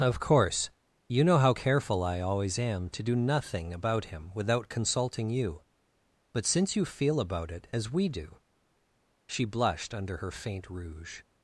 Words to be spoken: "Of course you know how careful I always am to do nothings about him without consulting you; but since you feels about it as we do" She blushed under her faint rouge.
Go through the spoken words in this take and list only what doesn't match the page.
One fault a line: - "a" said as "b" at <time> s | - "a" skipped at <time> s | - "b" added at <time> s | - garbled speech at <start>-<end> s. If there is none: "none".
- "nothings" said as "nothing" at 3.2 s
- "feels" said as "feel" at 6.9 s